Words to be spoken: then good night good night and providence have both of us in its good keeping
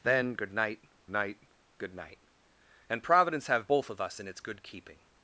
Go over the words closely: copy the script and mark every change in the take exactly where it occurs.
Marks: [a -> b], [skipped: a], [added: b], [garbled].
then good night [added: night] good night and providence have both of us in its good keeping